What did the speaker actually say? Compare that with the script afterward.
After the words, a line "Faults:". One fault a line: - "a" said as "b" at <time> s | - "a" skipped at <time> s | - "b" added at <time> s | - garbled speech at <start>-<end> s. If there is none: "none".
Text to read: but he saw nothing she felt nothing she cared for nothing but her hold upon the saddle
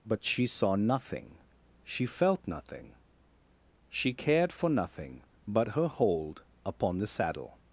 but she saw nothing she felt nothing she cared for nothing but her hold upon the saddle
Faults:
- "he" said as "she" at 0.2 s